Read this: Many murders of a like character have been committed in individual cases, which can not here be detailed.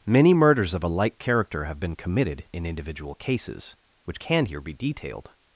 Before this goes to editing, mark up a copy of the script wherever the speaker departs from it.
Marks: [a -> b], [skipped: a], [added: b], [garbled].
Many murders of a like character have been committed in individual cases, which can [skipped: not] here be detailed.